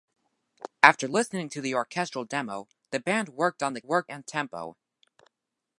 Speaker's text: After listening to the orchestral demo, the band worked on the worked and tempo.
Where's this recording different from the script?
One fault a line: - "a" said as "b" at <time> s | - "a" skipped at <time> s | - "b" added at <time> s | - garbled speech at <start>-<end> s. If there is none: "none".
none